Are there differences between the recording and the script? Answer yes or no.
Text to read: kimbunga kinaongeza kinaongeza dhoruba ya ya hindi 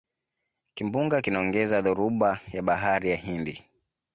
yes